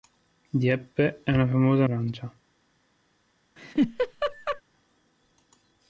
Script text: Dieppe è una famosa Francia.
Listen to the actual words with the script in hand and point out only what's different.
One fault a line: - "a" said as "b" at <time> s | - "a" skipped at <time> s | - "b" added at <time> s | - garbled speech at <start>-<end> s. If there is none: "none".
none